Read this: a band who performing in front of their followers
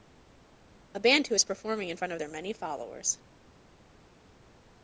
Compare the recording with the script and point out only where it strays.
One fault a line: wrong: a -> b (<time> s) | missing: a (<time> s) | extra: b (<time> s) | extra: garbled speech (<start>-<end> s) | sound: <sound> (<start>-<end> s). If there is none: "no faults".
extra: is (1.3 s)
extra: many (2.3 s)